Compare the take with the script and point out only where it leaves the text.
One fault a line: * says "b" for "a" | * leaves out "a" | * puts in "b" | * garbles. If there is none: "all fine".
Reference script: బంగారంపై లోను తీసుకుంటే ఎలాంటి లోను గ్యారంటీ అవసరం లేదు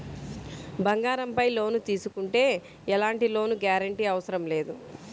all fine